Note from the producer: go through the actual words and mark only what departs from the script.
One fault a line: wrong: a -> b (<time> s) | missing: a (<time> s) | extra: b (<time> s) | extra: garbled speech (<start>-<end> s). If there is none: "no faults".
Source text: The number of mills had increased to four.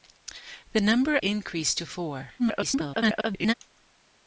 missing: of mills had (1.2 s)
extra: garbled speech (2.4-3.5 s)